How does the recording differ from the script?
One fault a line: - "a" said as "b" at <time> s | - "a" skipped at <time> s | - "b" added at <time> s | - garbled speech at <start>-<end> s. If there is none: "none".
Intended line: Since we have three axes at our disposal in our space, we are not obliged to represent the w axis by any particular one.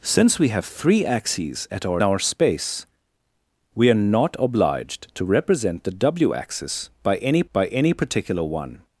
- "disposal in" skipped at 2.0 s
- "by any" added at 7.5 s